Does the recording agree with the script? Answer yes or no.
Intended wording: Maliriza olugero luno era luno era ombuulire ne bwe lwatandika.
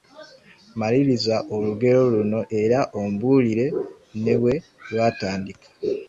no